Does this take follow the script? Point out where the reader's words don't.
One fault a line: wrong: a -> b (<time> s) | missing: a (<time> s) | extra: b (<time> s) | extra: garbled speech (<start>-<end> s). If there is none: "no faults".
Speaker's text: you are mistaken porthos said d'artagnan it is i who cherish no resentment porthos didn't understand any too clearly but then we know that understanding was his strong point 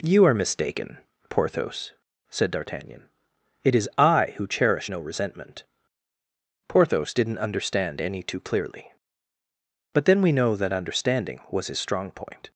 no faults